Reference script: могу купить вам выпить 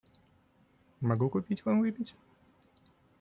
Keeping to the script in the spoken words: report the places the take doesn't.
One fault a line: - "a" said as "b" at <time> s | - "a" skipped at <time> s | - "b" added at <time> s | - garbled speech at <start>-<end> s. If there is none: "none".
none